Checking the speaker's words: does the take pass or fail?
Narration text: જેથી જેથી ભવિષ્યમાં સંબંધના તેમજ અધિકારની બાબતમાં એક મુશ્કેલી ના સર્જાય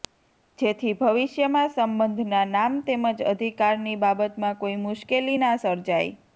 fail